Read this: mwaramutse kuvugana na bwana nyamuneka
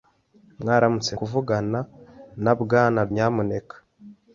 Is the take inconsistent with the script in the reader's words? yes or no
no